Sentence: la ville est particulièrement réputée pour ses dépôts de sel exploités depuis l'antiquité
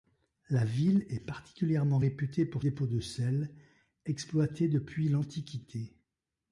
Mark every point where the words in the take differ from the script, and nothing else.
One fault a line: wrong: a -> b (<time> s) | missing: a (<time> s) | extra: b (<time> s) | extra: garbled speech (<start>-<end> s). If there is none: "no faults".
missing: ses (2.6 s)